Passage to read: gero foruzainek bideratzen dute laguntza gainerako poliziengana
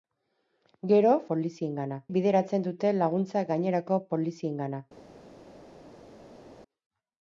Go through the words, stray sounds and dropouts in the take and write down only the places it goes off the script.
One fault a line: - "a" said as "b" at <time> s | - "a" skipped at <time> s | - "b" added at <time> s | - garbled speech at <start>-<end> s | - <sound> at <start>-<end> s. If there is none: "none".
- "foruzainek" said as "poliziengana" at 1.3 s